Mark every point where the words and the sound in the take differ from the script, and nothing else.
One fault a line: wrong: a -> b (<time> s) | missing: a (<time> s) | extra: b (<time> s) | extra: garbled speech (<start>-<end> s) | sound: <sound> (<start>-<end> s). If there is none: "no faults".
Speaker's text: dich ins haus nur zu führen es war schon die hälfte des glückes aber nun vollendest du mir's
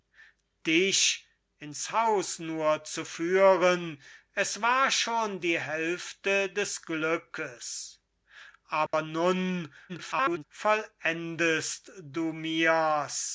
sound: dropout (8.9-8.9 s)
extra: garbled speech (9.9-10.4 s)